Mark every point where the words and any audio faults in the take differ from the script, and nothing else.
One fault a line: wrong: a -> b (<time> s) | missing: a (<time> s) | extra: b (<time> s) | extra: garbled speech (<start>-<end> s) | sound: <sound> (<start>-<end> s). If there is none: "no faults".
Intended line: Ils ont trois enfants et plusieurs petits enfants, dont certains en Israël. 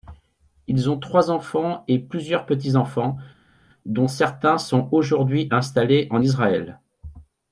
extra: sont aujourd'hui installés (4.6 s)